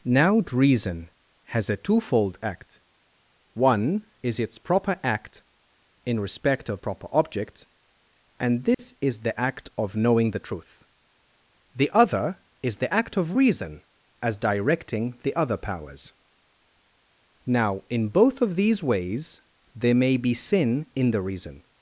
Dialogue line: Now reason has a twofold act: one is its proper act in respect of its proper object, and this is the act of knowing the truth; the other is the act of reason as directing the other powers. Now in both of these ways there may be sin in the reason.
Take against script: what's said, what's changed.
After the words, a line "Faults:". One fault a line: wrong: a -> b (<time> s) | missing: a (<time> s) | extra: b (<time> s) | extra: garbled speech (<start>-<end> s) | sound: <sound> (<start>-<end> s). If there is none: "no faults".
Now reason has a twofold act: one is its proper act in respect of proper object, and this is the act of knowing the truth; the other is the act of reason as directing the other powers. Now in both of these ways there may be sin in the reason.
Faults:
missing: its (6.8 s)
sound: dropout (8.7-8.8 s)